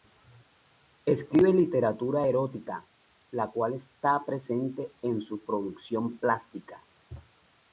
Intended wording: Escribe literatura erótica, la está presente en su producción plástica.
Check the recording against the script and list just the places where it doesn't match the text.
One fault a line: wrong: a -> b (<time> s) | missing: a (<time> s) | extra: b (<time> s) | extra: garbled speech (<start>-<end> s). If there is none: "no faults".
extra: cual (3.5 s)